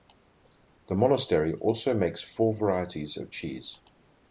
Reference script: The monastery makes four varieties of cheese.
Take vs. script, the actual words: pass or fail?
fail